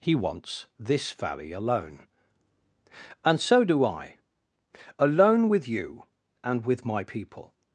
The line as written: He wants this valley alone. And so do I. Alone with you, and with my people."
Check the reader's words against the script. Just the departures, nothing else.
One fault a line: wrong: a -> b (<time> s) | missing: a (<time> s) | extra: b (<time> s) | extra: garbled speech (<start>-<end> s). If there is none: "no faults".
no faults